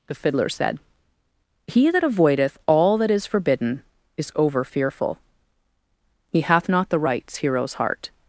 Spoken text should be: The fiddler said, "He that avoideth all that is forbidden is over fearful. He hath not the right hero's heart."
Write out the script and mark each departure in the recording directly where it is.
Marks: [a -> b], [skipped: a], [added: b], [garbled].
The fiddler said, "He that avoideth all that is forbidden is over fearful. He hath not the [right -> rights] hero's heart."